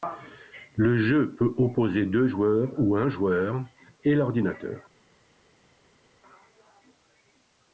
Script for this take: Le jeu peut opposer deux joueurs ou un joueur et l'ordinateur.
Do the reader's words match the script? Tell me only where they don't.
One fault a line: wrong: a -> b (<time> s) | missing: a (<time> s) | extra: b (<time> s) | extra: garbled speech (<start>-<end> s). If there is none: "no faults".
no faults